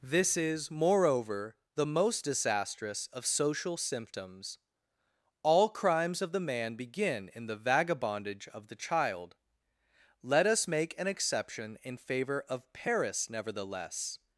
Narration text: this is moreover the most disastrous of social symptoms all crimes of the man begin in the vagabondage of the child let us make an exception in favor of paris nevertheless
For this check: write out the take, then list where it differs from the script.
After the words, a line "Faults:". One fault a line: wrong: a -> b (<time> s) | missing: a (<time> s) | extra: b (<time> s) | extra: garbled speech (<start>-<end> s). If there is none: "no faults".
this is moreover the most disastrous of social symptoms all crimes of the man begin in the vagabondage of the child let us make an exception in favor of paris nevertheless
Faults:
no faults